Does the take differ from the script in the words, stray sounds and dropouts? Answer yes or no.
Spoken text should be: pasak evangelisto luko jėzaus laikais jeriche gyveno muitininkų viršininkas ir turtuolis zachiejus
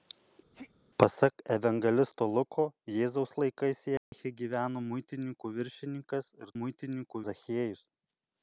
yes